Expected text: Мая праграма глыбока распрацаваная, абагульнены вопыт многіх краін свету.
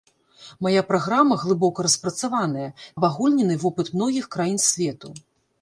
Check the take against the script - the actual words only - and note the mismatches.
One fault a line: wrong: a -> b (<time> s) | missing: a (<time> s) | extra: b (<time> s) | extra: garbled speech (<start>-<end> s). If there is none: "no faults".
no faults